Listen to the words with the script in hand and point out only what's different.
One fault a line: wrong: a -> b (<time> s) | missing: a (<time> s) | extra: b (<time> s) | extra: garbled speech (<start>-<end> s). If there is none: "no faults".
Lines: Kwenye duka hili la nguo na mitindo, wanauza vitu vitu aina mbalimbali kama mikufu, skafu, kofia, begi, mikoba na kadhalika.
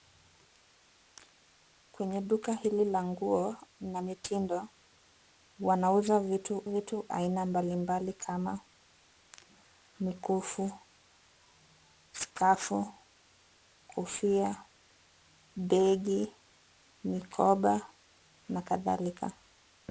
no faults